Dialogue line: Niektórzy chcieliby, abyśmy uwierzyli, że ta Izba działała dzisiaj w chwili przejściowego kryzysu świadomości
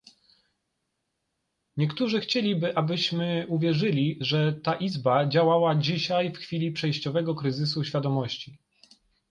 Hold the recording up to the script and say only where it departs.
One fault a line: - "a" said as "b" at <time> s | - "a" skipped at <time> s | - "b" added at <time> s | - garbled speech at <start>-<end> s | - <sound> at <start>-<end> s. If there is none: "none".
none